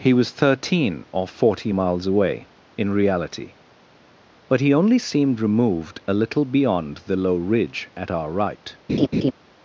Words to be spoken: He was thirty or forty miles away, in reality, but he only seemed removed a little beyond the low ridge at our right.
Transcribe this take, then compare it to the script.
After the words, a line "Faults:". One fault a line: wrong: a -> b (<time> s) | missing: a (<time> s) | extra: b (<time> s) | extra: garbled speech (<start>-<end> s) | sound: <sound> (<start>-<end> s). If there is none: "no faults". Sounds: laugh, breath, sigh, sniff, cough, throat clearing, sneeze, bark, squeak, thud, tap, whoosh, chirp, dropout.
He was thirteen or forty miles away, in reality, but he only seemed removed a little beyond the low ridge at our right.
Faults:
wrong: thirty -> thirteen (0.3 s)
sound: laugh (8.9-9.3 s)